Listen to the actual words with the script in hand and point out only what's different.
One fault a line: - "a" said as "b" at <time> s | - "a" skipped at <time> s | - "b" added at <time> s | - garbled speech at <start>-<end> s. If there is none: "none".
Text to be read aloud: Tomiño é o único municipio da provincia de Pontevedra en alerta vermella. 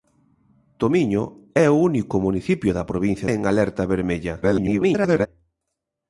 - "de Pontevedra" skipped at 3.3 s
- garbled speech at 4.4-5.3 s